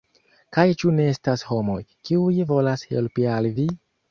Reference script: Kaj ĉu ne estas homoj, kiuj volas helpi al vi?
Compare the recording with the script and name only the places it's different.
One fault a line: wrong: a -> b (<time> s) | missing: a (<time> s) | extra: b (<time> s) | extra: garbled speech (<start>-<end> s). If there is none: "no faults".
no faults